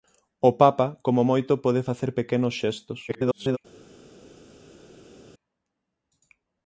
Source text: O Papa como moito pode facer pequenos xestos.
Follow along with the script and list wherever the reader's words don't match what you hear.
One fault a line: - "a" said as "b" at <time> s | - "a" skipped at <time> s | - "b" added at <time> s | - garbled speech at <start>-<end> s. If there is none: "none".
- garbled speech at 3.1-3.6 s